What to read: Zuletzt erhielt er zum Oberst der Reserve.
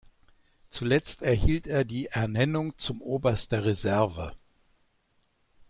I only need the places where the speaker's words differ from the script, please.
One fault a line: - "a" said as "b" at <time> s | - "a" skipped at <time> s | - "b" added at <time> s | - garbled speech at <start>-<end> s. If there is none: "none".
- "die Ernennung" added at 1.9 s